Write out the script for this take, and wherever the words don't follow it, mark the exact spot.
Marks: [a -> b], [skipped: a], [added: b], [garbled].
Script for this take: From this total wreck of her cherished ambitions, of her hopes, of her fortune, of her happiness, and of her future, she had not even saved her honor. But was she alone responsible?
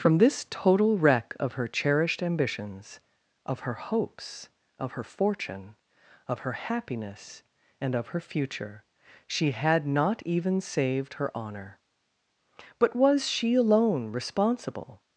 From this total wreck of her cherished ambitions, of her hopes, of her fortune, of her happiness, and of her future, she had not even saved her honor. But was she alone responsible?